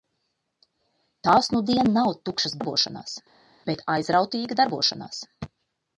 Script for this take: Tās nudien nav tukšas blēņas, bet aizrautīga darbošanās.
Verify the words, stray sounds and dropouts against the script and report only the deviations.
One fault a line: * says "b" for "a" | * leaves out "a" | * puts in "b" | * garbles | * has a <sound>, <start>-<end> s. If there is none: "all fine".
* says "darbošanās" for "blēņas"